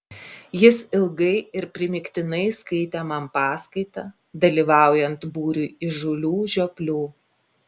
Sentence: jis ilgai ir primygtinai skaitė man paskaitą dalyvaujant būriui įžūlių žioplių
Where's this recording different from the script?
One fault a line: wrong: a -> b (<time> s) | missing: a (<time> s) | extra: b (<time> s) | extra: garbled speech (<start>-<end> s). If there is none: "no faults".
no faults